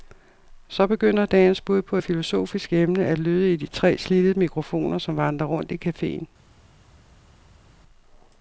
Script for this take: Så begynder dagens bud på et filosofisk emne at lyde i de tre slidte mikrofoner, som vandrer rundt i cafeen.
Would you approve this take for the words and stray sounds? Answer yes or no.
yes